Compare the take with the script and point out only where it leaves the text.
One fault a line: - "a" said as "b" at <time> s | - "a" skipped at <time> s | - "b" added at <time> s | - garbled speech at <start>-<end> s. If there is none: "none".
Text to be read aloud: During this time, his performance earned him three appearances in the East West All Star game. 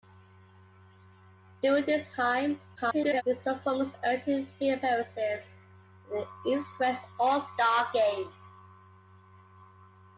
- garbled speech at 2.8-3.2 s